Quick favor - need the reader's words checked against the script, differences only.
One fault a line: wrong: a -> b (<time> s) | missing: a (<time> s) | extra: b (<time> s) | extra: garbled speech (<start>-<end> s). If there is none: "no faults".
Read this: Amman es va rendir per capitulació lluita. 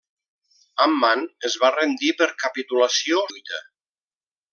no faults